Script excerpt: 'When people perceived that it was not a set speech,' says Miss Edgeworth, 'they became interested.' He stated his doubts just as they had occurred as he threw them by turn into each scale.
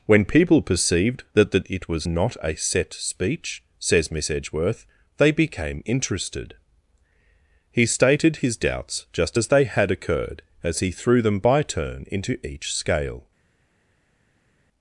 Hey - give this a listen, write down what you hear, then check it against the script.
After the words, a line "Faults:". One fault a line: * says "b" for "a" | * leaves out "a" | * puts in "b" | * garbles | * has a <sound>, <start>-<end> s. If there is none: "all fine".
'When people perceived that that it was not a set speech,' says Miss Edgeworth, 'they became interested.' He stated his doubts just as they had occurred as he threw them by turn into each scale.
Faults:
* puts in "that"